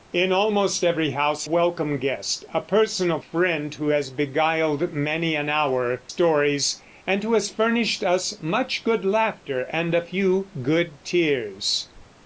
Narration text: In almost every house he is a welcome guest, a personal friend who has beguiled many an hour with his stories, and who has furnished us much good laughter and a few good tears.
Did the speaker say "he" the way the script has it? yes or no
no